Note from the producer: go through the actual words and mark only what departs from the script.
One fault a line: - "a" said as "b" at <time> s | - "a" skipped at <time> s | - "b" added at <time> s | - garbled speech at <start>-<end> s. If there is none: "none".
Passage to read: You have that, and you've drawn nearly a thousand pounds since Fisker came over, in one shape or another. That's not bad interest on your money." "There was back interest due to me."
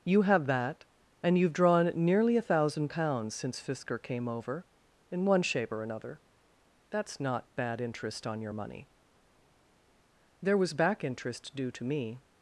none